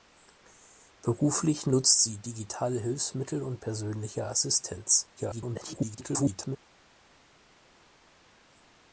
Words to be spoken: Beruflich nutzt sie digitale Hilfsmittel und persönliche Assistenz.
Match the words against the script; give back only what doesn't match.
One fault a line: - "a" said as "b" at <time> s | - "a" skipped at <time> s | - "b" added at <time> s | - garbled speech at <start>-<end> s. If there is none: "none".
- garbled speech at 5.2-6.6 s